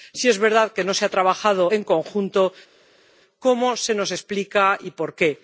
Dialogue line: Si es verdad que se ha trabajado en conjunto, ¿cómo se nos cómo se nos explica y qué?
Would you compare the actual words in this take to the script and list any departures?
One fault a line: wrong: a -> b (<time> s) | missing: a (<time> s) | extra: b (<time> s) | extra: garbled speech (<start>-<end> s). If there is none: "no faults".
extra: no (0.8 s)
missing: cómo se nos (4.1 s)
extra: por (4.9 s)